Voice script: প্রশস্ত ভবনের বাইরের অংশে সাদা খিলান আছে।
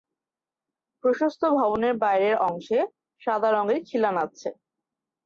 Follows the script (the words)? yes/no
no